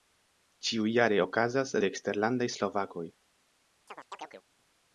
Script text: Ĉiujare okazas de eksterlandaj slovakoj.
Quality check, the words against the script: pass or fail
pass